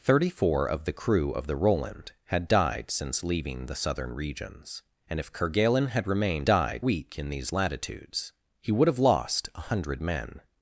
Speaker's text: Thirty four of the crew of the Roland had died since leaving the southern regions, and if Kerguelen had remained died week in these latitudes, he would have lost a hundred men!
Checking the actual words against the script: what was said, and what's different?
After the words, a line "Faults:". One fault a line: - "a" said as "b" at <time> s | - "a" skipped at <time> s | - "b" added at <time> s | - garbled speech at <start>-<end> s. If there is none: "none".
Thirty four of the crew of the Roland had died since leaving the southern regions, and if Kerguelen had remained died week in these latitudes, he would have lost a hundred men!
Faults:
none